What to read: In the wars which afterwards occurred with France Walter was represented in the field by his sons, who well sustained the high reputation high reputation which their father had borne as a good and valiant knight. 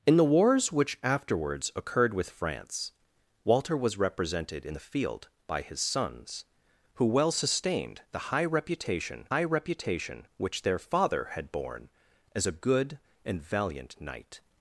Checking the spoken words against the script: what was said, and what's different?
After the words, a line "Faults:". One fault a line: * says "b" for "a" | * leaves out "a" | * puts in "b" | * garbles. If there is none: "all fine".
In the wars which afterwards occurred with France Walter was represented in the field by his sons, who well sustained the high reputation high reputation which their father had borne as a good and valiant knight.
Faults:
all fine